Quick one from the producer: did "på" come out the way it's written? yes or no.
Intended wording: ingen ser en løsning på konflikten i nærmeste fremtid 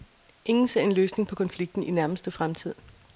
yes